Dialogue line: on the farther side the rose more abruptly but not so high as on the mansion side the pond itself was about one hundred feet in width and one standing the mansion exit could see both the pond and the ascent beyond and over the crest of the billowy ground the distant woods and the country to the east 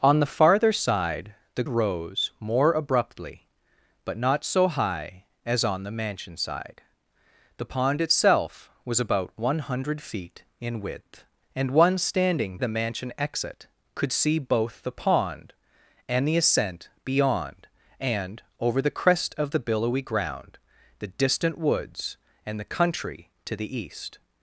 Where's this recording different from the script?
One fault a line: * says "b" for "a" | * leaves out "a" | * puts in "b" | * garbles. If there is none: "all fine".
all fine